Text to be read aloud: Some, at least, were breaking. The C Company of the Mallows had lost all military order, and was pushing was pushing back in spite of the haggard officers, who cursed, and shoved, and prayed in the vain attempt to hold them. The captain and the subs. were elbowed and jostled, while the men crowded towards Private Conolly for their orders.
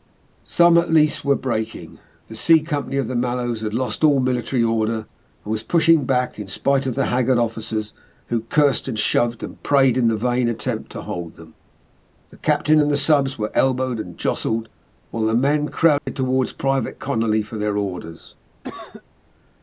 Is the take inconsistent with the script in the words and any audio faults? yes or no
yes